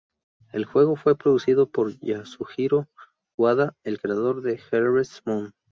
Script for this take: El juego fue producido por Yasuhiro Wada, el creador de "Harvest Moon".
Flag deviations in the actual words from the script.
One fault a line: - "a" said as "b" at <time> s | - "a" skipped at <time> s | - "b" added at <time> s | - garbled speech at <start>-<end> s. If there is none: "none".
none